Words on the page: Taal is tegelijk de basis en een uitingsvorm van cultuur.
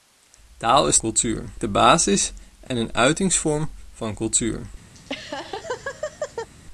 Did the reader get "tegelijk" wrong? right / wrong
wrong